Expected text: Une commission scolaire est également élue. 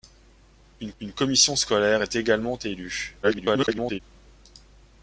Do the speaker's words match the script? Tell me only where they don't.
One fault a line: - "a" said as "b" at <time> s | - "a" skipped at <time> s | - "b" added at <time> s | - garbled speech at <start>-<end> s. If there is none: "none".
- "une" added at 1.0 s
- garbled speech at 3.2-4.0 s